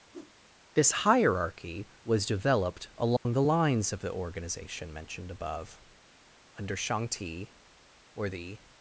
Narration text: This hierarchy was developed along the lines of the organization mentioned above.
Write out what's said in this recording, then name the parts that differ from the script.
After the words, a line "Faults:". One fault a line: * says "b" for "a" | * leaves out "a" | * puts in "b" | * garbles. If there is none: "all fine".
This hierarchy was developed along the lines of the organization mentioned above. Under Shang Ti were the
Faults:
* puts in "Under Shang Ti were the"